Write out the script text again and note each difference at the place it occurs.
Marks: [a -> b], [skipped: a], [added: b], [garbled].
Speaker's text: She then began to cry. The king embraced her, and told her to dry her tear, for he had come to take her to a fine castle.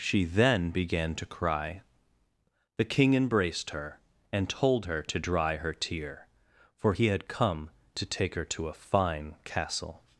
She then began to cry. The king embraced her, and told her to dry her tear, for he had come to take her to a fine castle.